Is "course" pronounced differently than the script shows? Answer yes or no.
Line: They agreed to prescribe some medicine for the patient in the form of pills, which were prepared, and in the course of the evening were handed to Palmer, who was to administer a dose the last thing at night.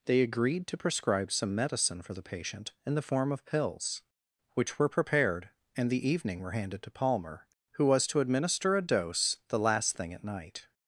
yes